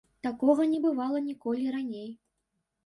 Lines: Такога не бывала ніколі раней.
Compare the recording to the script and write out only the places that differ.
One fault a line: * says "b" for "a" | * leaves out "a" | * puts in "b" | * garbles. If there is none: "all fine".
all fine